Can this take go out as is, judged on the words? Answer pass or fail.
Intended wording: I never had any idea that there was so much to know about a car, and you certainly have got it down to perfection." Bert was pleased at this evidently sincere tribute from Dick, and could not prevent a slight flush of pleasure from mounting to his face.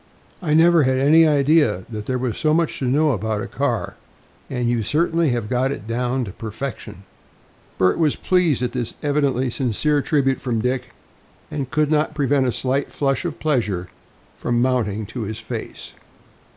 pass